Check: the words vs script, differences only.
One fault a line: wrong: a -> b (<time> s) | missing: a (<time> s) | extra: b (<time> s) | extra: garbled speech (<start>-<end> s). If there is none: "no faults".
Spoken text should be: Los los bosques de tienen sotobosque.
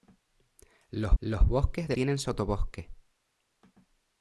no faults